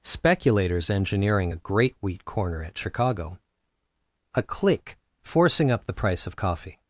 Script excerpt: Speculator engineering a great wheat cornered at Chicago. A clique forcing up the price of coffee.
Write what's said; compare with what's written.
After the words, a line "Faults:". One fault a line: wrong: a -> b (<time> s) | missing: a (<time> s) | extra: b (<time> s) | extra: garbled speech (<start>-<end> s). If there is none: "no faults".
Speculators engineering a great wheat corner at Chicago. A clique forcing up the price of coffee.
Faults:
wrong: Speculator -> Speculators (0.0 s)
wrong: cornered -> corner (2.2 s)